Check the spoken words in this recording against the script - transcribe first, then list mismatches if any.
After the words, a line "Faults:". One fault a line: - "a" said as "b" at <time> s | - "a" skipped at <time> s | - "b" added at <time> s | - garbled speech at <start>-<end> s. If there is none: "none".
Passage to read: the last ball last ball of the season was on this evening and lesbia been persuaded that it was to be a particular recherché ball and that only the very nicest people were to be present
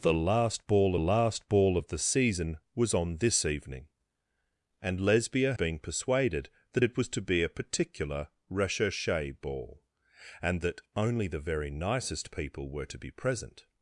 the last ball last ball of the season was on this evening and lesbia been persuaded that it was to be a particular recherché ball and that only the very nicest people were to be present
Faults:
none